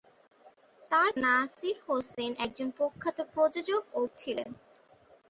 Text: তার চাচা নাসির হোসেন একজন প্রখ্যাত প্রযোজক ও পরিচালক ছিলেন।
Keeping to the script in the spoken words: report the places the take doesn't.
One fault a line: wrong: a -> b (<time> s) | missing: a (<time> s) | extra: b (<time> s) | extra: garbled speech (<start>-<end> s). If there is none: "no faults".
missing: চাচা (1.1 s)
missing: পরিচালক (4.1 s)